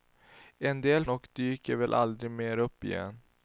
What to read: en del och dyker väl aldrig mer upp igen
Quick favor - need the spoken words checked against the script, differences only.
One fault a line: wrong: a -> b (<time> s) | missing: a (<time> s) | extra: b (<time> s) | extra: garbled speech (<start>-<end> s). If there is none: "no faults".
no faults